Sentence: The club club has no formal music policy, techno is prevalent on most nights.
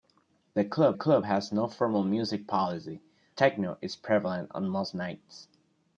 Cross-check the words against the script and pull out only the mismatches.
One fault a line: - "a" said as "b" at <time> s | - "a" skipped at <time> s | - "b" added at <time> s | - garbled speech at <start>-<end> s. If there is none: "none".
none